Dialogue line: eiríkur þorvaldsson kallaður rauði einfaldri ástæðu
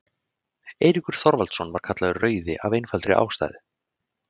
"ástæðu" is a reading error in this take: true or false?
false